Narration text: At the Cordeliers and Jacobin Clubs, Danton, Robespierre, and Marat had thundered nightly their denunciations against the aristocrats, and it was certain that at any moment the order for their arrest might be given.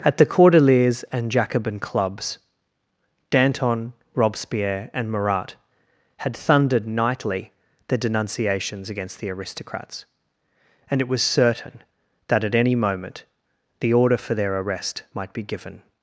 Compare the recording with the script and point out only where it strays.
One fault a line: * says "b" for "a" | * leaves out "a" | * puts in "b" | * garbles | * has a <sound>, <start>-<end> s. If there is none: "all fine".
all fine